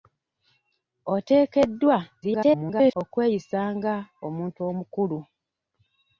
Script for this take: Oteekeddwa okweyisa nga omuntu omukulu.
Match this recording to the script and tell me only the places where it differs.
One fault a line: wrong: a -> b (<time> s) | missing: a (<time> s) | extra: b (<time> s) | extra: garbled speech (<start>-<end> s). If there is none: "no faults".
extra: garbled speech (2.2-3.0 s)